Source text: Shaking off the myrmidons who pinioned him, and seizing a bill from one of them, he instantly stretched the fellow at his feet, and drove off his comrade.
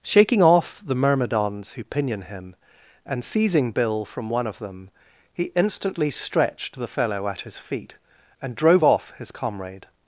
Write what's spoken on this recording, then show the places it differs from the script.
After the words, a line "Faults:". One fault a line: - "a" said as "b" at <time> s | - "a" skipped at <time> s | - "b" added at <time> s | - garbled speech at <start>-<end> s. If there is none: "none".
Shaking off the myrmidons who pinion him, and seizing bill from one of them, he instantly stretched the fellow at his feet, and drove off his comrade.
Faults:
- "pinioned" said as "pinion" at 1.8 s
- "a" skipped at 3.7 s